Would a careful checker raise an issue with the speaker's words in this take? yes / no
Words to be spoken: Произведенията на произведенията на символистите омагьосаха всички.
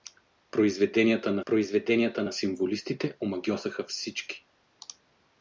no